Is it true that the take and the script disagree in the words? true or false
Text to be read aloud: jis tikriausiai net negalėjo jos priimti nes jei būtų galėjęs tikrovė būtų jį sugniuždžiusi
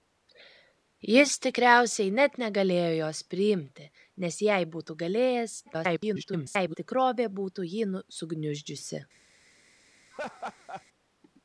true